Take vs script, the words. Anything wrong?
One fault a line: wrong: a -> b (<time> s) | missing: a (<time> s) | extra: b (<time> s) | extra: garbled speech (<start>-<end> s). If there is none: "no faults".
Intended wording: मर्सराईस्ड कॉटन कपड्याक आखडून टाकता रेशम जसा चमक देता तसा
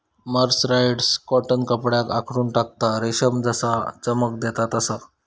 no faults